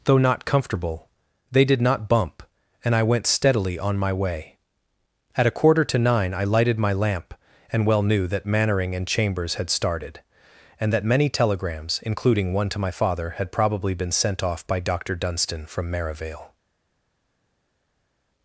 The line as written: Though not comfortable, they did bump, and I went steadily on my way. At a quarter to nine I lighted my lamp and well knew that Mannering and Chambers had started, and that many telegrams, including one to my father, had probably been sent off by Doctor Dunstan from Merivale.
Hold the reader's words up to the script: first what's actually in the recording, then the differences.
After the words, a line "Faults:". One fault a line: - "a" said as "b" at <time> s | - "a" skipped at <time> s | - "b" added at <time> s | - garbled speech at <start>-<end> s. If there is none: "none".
Though not comfortable, they did not bump, and I went steadily on my way. At a quarter to nine I lighted my lamp and well knew that Mannering and Chambers had started, and that many telegrams, including one to my father, had probably been sent off by Doctor Dunstan from Merivale.
Faults:
- "not" added at 1.8 s